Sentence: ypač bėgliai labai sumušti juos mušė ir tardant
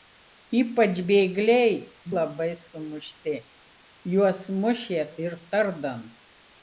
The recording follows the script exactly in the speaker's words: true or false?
true